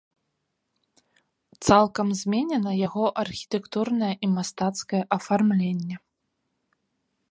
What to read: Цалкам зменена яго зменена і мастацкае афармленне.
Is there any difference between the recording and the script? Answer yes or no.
yes